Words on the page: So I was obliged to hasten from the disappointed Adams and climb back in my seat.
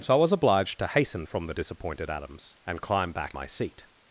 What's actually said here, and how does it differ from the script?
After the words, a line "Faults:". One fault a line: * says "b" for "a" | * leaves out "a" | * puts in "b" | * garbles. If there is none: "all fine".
So I was obliged to hasten from the disappointed Adams and climb back my seat.
Faults:
* leaves out "in"